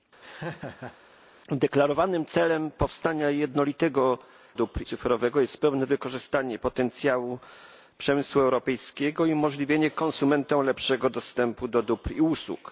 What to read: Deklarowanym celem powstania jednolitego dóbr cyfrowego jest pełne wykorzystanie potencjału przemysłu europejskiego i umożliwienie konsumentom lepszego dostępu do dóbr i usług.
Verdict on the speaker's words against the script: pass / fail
pass